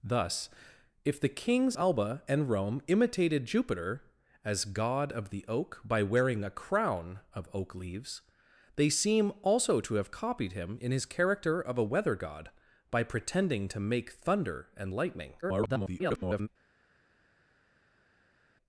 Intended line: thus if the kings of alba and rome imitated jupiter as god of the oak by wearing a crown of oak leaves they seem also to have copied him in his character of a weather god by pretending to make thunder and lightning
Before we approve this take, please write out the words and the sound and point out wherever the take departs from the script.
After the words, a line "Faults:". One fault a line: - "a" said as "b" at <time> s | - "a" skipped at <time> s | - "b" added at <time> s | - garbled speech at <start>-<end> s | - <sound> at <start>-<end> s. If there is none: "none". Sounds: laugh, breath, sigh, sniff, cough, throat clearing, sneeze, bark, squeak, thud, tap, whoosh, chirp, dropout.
thus if the kings alba and rome imitated jupiter as god of the oak by wearing a crown of oak leaves they seem also to have copied him in his character of a weather god by pretending to make thunder and lightning [garbled]
Faults:
- "of" skipped at 1.8 s
- garbled speech at 15.4-16.5 s